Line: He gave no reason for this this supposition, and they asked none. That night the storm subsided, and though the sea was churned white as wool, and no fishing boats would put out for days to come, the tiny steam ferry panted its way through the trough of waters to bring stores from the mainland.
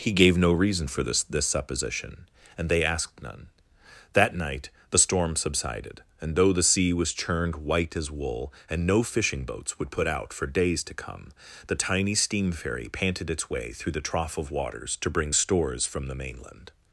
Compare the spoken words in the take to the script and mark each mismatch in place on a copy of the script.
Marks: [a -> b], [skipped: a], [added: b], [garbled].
He gave no reason for this this supposition, and they asked none. That night the storm subsided, and though the sea was churned white as wool, and no fishing boats would put out for days to come, the tiny steam ferry panted its way through the trough of waters to bring stores from the mainland.